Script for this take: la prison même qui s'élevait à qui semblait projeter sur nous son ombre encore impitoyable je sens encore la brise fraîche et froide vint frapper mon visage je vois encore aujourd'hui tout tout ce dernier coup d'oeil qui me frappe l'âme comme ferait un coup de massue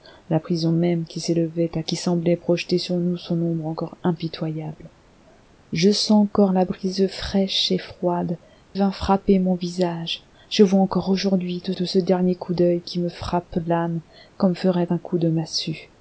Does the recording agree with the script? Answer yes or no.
yes